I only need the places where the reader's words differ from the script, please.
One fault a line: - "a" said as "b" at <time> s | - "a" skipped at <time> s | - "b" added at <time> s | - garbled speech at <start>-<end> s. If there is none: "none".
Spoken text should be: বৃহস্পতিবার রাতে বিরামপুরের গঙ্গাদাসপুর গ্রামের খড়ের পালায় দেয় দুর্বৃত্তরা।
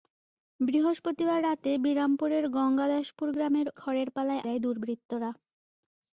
none